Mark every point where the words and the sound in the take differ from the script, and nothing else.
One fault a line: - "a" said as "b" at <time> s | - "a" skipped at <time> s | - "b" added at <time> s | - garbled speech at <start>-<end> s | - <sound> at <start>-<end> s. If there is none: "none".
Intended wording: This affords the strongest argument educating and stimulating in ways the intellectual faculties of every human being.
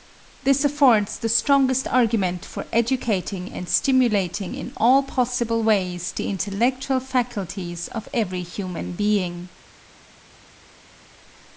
- "for" added at 2.4 s
- "all possible" added at 4.8 s